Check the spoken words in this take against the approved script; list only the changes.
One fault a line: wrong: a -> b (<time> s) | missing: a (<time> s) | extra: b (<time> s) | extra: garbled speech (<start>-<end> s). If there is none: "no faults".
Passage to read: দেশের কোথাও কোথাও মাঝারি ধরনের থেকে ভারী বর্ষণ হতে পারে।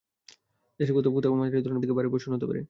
no faults